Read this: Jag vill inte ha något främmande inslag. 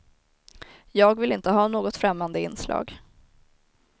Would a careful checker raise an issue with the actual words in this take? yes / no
no